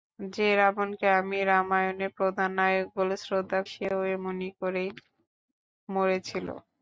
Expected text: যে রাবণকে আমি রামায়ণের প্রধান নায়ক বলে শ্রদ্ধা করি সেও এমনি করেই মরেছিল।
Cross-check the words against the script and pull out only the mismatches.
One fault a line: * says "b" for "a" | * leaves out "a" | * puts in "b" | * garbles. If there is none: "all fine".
* leaves out "করি"